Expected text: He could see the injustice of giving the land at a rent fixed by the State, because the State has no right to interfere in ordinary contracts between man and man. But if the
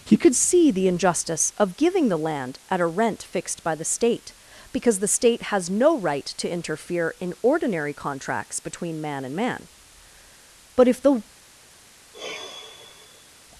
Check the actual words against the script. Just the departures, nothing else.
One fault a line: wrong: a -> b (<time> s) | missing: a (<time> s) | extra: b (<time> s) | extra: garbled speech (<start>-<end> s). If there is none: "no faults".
no faults